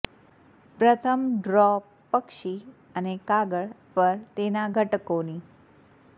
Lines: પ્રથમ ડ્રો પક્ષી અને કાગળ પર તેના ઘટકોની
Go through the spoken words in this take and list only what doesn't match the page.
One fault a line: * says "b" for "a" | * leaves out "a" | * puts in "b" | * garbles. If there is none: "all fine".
all fine